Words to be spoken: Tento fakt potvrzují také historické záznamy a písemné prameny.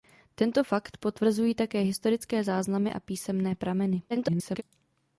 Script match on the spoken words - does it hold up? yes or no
no